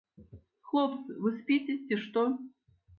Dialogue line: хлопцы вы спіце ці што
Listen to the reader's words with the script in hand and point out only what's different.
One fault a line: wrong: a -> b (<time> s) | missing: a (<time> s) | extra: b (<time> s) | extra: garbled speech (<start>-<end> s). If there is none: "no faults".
no faults